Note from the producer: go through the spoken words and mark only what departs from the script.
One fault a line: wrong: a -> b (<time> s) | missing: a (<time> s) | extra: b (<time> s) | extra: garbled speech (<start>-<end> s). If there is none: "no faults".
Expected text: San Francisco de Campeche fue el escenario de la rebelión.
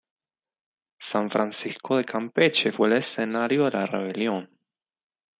no faults